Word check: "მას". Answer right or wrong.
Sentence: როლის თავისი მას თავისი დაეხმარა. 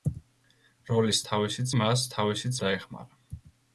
right